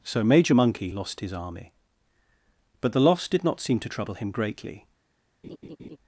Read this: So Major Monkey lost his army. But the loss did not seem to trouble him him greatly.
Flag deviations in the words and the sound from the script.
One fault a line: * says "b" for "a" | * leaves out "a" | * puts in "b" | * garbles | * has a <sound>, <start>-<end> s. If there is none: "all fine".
* leaves out "him"
* has a laugh, 5.4-6.0 s